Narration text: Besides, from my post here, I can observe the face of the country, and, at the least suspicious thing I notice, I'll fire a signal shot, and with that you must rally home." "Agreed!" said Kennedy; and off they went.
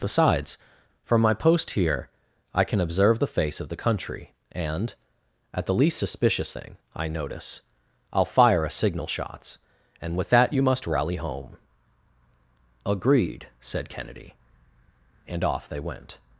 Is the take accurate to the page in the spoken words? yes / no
no